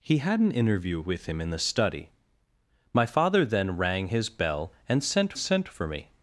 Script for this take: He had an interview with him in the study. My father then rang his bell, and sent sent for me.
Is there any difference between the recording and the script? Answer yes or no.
no